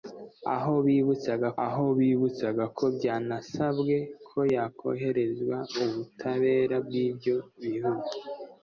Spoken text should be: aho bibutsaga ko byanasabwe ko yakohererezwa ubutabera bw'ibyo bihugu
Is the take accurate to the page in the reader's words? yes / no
no